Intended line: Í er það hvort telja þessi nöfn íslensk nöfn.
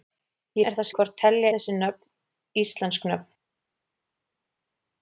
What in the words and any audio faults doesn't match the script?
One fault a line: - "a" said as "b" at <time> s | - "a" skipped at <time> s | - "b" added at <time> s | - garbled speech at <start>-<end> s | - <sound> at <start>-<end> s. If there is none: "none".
none